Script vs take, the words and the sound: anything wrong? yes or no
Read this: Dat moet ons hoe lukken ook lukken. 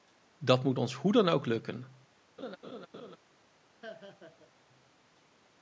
yes